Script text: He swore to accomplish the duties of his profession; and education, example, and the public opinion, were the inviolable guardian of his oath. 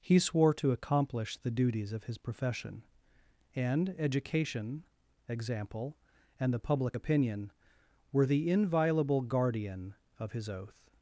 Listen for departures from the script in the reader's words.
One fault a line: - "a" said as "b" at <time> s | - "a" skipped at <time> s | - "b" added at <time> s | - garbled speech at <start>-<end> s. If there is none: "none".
none